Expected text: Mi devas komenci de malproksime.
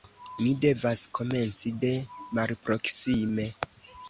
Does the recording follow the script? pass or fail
pass